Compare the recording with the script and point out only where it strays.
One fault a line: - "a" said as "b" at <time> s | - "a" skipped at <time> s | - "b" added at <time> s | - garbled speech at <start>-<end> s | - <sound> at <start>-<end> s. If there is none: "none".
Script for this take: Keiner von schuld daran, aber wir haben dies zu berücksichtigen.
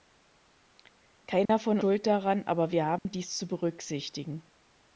- dropout at 1.5-1.5 s
- dropout at 3.0-3.1 s